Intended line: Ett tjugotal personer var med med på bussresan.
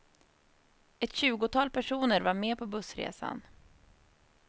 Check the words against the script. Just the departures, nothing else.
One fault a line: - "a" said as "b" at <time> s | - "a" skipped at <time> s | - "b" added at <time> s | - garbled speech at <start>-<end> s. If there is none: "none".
- "med" skipped at 2.6 s